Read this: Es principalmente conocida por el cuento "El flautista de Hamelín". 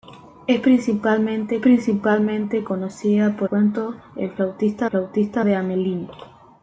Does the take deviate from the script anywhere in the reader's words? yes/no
yes